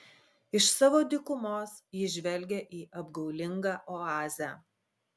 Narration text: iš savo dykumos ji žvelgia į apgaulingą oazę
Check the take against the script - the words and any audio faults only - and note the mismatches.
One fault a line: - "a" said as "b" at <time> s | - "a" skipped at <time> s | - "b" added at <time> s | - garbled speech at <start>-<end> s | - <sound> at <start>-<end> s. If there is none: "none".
none